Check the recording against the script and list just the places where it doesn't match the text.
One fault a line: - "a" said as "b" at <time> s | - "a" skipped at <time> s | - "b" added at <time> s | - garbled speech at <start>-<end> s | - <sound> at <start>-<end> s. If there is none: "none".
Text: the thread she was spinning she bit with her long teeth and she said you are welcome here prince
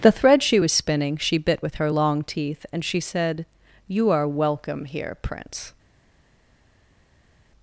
none